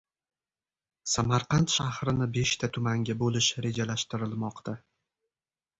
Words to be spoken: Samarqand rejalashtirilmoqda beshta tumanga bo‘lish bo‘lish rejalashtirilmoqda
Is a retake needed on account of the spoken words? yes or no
yes